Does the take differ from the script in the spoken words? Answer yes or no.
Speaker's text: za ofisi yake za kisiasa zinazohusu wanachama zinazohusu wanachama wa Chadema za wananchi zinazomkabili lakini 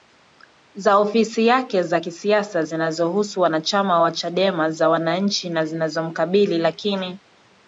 yes